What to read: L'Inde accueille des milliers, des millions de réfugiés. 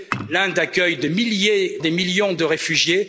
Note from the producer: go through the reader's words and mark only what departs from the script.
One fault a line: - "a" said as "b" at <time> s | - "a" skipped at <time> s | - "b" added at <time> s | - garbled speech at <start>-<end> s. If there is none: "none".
none